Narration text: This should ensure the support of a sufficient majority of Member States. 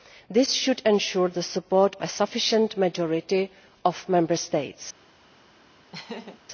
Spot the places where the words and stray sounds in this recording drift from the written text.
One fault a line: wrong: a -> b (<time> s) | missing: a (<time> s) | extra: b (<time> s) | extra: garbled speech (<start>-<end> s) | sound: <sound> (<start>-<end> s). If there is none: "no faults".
missing: of (1.9 s)
sound: laugh (5.9-6.4 s)